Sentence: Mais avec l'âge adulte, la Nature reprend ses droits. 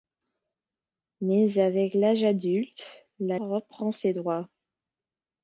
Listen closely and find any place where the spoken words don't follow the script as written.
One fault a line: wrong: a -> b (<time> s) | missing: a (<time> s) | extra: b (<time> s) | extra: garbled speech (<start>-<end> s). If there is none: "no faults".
missing: Nature (3.4 s)